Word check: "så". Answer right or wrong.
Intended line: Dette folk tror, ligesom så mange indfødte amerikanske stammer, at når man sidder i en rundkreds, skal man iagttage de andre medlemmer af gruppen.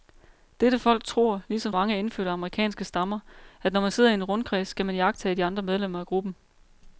wrong